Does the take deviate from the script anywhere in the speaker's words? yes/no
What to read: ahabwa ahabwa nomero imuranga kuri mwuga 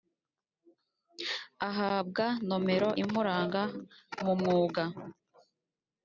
yes